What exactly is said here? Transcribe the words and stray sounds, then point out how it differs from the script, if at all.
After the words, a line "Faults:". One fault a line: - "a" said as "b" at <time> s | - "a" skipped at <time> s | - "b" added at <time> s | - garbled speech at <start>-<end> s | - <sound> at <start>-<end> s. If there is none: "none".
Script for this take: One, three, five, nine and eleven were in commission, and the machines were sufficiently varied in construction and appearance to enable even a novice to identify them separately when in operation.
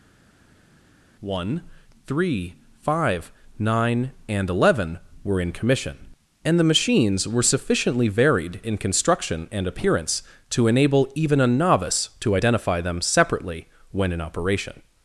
One, three, five, nine and eleven were in commission, and the machines were sufficiently varied in construction and appearance to enable even a novice to identify them separately when in operation.
Faults:
none